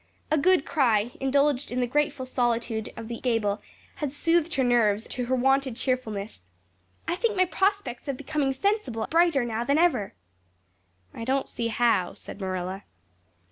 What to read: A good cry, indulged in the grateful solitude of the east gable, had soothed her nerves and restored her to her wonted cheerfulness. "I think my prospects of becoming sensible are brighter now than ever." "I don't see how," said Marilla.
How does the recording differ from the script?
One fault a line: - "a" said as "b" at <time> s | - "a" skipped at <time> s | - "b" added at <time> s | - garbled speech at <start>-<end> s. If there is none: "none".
- "east" skipped at 3.2 s
- "and restored her" skipped at 5.1 s
- "are" skipped at 9.0 s